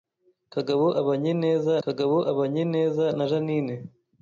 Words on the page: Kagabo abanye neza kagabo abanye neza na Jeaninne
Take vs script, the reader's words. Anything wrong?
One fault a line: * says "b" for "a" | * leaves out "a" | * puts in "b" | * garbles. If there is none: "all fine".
all fine